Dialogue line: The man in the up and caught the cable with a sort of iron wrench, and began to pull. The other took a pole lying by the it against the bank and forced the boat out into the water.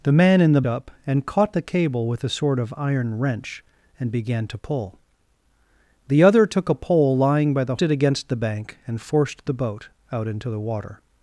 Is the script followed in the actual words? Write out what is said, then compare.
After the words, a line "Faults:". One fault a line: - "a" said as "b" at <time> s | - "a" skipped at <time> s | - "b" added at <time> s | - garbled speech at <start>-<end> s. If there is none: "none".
The man in the up and caught the cable with a sort of iron wrench, and began to pull. The other took a pole lying by the it against the bank and forced the boat out into the water.
Faults:
none